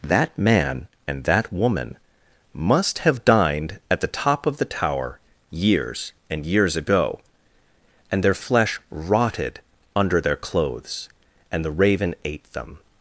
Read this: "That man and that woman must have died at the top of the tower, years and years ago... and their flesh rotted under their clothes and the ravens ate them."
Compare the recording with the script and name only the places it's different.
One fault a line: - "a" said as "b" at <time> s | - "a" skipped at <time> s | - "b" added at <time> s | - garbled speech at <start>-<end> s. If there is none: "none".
- "died" said as "dined" at 3.2 s
- "ravens" said as "raven" at 11.7 s